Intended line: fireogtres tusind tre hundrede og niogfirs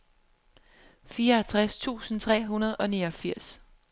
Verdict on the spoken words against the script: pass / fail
pass